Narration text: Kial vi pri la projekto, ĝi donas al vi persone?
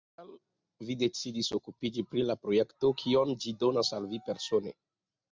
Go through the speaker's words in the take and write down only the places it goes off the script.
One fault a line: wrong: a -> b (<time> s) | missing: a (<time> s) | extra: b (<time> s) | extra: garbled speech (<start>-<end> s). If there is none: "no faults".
extra: decidis okupiĝi (1.0 s)
extra: kion (3.0 s)